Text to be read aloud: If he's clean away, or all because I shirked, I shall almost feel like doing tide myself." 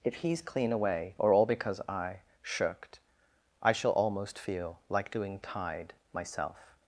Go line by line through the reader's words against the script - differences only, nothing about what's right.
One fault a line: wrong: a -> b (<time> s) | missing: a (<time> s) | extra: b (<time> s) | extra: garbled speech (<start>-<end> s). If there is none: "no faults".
no faults